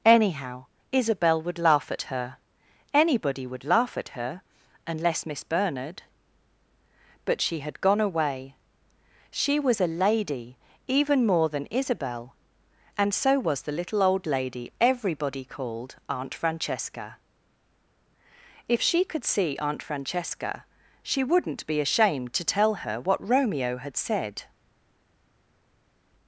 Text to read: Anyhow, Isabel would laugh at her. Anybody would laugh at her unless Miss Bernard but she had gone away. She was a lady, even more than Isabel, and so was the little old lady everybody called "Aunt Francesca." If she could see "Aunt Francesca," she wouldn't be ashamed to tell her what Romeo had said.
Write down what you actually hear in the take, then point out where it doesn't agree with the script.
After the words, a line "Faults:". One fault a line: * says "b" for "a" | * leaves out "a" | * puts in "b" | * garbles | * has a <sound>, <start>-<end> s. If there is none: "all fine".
Anyhow, Isabel would laugh at her. Anybody would laugh at her unless Miss Bernard but she had gone away. She was a lady, even more than Isabel, and so was the little old lady everybody called "Aunt Francesca." If she could see "Aunt Francesca," she wouldn't be ashamed to tell her what Romeo had said.
Faults:
all fine